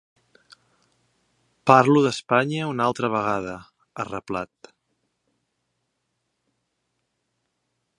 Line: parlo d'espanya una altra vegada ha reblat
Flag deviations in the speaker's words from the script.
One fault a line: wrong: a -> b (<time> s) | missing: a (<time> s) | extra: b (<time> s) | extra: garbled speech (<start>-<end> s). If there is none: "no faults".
no faults